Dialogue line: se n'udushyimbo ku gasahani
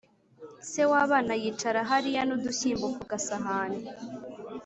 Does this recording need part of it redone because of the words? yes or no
yes